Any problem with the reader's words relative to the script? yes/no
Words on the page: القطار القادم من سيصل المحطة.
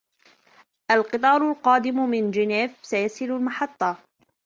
yes